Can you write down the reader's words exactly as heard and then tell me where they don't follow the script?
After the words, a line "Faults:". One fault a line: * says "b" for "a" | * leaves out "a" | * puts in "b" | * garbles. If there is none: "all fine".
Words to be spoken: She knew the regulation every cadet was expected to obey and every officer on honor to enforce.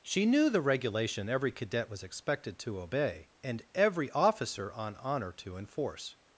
She knew the regulation every cadet was expected to obey and every officer on honor to enforce.
Faults:
all fine